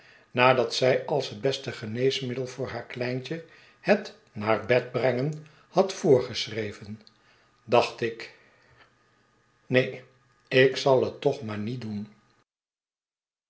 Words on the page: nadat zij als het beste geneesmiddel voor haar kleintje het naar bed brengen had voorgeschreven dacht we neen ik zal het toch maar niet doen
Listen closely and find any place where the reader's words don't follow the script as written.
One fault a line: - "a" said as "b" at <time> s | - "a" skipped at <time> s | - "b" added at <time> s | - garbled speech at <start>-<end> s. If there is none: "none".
- "we" said as "ik" at 8.0 s